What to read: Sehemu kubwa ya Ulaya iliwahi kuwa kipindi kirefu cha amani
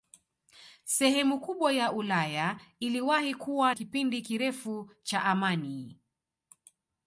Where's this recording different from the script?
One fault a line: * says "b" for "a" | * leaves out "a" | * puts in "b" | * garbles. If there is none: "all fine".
all fine